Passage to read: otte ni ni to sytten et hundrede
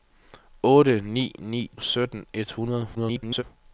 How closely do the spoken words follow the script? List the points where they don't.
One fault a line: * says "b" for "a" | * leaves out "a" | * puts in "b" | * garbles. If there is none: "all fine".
* leaves out "to"
* garbles